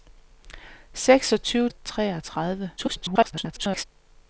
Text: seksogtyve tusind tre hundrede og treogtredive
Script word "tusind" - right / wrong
wrong